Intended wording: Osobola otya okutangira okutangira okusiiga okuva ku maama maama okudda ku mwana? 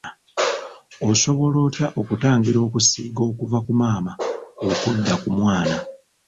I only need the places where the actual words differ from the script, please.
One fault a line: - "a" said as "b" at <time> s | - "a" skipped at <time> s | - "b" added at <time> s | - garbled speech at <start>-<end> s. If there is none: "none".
- "okutangira" skipped at 2.6 s
- "maama" skipped at 4.1 s